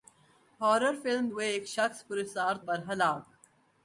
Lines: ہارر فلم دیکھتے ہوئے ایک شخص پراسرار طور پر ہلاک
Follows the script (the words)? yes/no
no